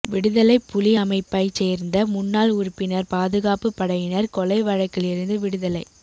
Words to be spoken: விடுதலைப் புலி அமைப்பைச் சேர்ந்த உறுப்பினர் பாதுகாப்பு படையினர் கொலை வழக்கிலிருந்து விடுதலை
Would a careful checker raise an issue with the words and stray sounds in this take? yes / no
yes